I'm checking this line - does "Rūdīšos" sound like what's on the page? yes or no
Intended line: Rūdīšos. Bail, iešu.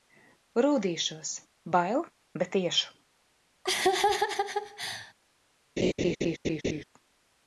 yes